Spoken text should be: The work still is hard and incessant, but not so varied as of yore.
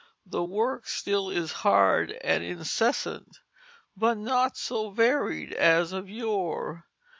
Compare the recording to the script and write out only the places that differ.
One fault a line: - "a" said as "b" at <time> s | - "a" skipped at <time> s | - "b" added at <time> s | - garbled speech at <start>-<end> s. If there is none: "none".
none